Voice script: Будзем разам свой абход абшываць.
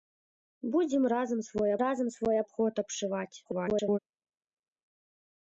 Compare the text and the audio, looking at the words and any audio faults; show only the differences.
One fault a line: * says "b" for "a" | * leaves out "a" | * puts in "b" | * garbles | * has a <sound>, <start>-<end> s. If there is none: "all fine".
* puts in "разам свой"
* garbles